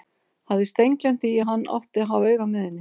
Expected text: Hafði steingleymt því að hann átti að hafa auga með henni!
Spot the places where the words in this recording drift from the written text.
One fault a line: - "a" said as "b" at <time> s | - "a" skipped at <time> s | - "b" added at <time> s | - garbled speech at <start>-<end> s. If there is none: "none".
none